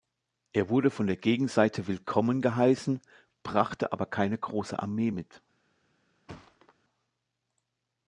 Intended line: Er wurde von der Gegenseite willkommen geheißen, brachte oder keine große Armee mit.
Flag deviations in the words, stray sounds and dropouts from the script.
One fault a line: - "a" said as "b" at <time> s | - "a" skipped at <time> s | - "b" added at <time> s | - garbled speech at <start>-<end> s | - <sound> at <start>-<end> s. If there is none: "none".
- "oder" said as "aber" at 3.9 s
- thud at 6.3-6.7 s